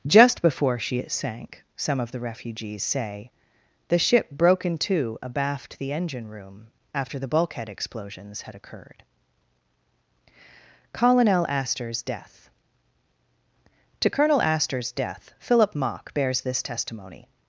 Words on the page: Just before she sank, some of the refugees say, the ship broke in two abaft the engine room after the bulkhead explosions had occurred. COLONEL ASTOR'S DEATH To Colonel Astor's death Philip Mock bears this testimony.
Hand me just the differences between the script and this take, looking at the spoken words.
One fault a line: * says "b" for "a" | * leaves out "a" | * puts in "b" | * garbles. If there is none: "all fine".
all fine